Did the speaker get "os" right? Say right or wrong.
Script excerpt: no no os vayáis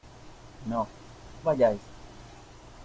wrong